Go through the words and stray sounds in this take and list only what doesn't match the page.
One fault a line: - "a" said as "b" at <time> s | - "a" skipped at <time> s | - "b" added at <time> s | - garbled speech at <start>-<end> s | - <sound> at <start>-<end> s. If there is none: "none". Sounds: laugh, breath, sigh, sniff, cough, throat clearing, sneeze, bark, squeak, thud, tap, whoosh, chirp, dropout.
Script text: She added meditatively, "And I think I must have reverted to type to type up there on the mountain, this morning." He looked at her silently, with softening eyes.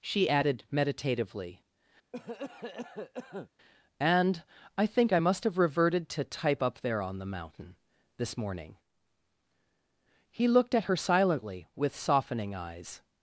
- cough at 2.1-3.5 s
- "to type" skipped at 6.6 s